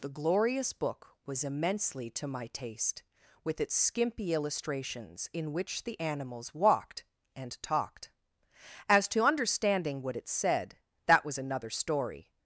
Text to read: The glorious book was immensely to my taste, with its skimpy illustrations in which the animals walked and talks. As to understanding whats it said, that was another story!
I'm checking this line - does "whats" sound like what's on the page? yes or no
no